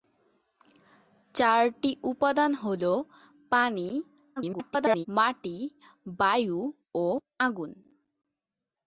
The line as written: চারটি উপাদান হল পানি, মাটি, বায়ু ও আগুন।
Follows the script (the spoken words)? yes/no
no